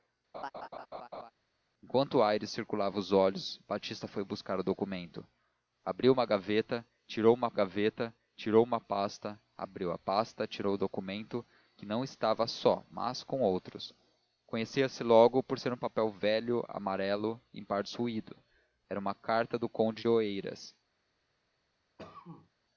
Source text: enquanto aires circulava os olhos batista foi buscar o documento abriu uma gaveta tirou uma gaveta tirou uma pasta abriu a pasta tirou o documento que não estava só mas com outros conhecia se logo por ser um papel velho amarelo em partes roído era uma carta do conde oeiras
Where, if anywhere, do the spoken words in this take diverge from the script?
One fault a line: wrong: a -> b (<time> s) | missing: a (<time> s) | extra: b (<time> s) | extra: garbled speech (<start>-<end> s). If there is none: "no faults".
no faults